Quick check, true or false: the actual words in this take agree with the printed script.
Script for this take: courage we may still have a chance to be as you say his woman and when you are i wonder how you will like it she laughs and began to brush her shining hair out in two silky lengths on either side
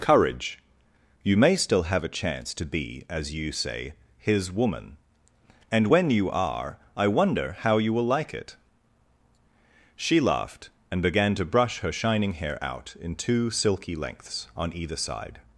false